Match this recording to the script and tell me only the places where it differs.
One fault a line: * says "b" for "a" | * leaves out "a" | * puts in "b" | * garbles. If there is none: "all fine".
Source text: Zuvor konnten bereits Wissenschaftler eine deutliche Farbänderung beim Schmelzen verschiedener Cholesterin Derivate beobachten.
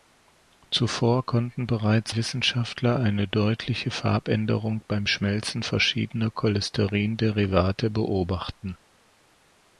all fine